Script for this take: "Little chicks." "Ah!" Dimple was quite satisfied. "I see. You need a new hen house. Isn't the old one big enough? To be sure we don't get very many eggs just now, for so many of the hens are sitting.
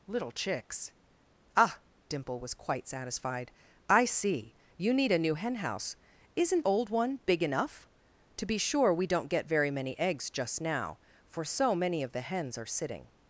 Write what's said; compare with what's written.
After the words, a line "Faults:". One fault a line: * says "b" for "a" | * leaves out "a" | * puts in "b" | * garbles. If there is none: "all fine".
"Little chicks." "Ah!" Dimple was quite satisfied. "I see. You need a new hen house. Isn't old one big enough? To be sure we don't get very many eggs just now, for so many of the hens are sitting.
Faults:
* leaves out "the"